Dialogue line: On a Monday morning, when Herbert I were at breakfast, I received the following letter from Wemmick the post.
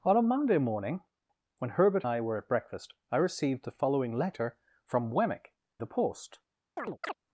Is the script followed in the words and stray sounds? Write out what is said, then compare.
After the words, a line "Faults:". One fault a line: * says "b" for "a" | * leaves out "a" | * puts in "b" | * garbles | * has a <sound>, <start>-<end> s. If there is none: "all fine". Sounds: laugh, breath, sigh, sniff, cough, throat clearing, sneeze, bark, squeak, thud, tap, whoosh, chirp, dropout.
On a Monday morning, when Herbert I were at breakfast, I received the following letter from Wemmick the post.
Faults:
* has a chirp, 6.8-7.1 s